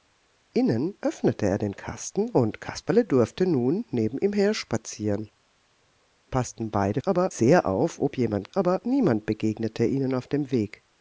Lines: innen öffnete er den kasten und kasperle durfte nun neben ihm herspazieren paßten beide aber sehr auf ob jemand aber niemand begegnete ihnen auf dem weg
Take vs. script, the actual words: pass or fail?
pass